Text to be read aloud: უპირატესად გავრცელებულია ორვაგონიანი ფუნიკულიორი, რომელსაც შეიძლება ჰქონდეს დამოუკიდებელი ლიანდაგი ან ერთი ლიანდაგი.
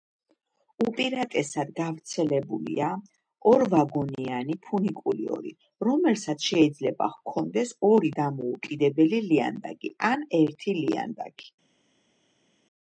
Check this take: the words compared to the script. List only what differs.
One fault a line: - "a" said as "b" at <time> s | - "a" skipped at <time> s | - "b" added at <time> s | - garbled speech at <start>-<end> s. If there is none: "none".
- "ორი" added at 7.9 s